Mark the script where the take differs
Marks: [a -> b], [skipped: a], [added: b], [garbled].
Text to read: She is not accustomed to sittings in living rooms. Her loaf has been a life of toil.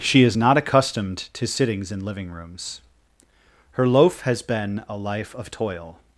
She is not accustomed to sittings in living rooms. Her loaf has been a life of toil.